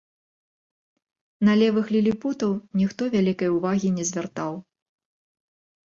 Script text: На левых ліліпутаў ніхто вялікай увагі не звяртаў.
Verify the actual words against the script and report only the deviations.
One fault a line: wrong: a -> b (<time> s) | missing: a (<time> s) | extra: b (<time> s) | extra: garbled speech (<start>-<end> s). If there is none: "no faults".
no faults